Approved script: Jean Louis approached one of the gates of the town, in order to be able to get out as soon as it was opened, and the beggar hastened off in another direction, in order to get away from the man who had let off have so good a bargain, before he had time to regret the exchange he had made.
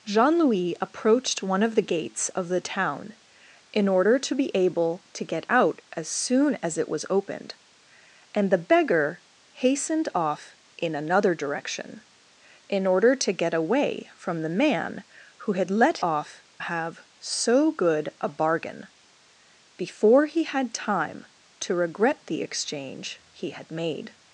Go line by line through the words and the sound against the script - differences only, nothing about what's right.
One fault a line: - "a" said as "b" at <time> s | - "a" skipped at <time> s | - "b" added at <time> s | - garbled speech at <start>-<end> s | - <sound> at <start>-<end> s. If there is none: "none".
none